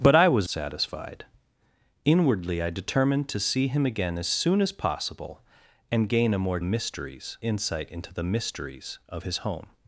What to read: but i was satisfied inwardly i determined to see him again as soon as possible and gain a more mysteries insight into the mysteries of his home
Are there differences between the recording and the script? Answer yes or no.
no